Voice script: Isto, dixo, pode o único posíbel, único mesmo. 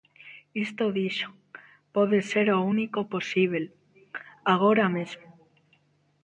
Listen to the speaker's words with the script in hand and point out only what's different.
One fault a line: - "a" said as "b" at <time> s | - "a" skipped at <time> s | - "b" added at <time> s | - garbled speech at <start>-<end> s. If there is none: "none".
- "ser" added at 2.3 s
- "único" said as "agora" at 4.5 s